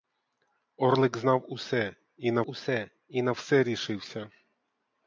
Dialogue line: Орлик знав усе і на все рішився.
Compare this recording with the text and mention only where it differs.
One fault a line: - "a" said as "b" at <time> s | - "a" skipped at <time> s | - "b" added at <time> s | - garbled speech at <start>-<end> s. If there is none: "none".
- "усе і на" added at 2.5 s